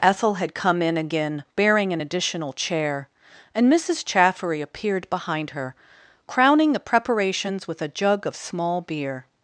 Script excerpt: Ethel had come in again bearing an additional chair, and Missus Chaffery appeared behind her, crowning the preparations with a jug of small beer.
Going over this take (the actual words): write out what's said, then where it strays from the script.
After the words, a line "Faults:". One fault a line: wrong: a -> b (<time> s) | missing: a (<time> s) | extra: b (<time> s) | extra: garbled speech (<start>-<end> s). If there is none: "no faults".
Ethel had come in again bearing an additional chair, and Missus Chaffery appeared behind her, crowning the preparations with a jug of small beer.
Faults:
no faults